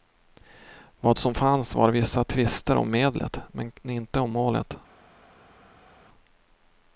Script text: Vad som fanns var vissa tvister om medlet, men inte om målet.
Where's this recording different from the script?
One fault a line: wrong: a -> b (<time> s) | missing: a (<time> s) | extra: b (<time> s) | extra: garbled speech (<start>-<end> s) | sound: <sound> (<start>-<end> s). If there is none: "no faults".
no faults